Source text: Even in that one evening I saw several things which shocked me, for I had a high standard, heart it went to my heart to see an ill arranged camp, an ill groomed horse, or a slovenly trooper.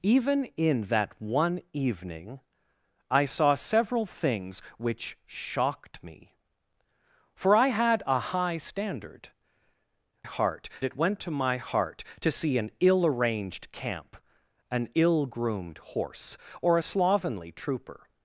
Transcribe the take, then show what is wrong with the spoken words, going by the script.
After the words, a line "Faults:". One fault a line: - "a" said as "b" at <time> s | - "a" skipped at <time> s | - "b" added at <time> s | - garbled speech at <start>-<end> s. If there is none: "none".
Even in that one evening I saw several things which shocked me, for I had a high standard, heart it went to my heart to see an ill arranged camp, an ill groomed horse, or a slovenly trooper.
Faults:
none